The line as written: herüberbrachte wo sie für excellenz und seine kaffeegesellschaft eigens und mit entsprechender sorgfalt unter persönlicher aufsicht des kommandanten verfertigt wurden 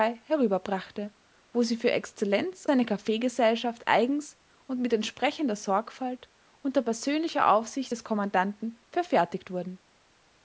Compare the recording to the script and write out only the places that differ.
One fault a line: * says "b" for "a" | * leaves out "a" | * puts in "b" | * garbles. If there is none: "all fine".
* leaves out "und"